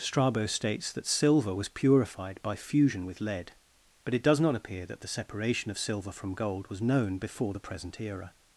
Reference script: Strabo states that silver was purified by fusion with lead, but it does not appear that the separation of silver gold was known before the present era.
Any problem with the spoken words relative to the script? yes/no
yes